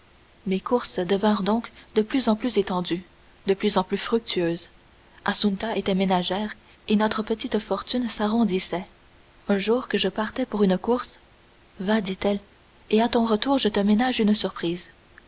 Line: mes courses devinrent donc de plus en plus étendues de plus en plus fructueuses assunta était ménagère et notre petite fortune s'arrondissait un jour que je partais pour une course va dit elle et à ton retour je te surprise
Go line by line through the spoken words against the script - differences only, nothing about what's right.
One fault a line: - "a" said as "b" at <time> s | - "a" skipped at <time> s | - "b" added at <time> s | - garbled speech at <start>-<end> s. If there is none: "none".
- "ménage une" added at 13.8 s